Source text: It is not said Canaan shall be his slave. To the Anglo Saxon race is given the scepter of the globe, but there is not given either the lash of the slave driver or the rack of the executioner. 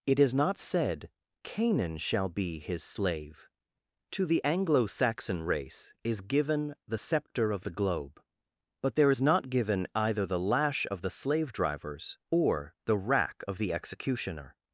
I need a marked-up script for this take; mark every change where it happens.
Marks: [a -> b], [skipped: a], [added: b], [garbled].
It is not said Canaan shall be his slave. To the Anglo Saxon race is given the scepter of the globe, but there is not given either the lash of the slave [driver -> drivers] or the rack of the executioner.